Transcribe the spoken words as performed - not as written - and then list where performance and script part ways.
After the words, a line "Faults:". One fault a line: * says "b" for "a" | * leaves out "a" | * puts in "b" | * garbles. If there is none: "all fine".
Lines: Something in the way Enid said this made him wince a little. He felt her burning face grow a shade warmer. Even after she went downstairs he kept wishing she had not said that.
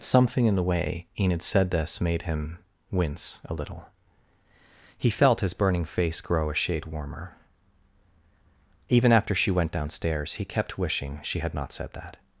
Something in the way Enid said this made him wince a little. He felt his burning face grow a shade warmer. Even after she went downstairs he kept wishing she had not said that.
Faults:
* says "his" for "her"